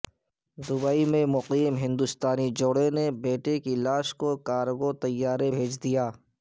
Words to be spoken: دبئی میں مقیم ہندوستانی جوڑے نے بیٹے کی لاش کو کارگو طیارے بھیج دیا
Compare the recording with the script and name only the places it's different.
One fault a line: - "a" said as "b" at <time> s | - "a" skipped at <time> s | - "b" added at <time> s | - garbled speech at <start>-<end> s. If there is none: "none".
none